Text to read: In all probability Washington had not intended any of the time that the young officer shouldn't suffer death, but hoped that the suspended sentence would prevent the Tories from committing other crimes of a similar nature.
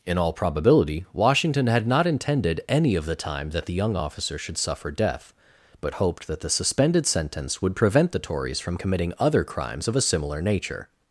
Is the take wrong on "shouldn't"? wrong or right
wrong